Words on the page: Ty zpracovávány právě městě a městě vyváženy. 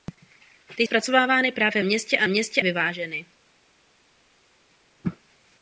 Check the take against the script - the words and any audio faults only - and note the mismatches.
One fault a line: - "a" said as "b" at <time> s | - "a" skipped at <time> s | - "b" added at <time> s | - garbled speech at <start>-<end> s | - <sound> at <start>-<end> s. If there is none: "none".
none